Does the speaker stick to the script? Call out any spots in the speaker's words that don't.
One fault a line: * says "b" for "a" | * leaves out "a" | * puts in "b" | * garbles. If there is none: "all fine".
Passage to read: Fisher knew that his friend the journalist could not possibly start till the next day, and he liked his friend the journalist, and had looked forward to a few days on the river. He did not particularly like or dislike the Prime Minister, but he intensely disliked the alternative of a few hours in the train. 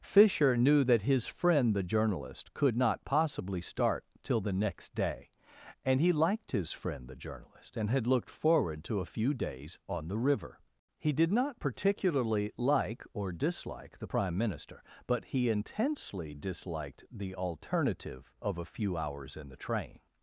all fine